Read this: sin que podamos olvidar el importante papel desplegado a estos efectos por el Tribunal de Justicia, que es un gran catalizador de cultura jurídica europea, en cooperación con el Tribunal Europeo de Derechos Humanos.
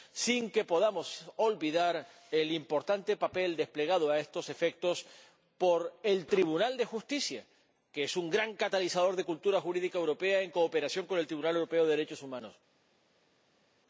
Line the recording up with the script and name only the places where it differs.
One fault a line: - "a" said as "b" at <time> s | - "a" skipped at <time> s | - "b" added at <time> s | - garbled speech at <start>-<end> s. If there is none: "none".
none